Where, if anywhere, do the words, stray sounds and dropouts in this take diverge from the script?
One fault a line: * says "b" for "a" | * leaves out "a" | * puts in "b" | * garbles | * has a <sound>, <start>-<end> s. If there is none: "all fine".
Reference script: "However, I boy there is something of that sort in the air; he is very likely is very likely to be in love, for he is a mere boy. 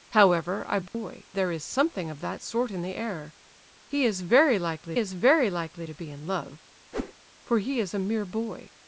* has a dropout, 0.9-0.9 s
* has a whoosh, 6.9-7.1 s